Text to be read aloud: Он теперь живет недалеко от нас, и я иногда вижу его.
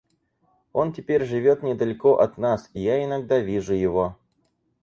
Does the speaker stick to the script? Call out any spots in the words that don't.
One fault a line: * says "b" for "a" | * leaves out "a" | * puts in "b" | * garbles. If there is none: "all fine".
all fine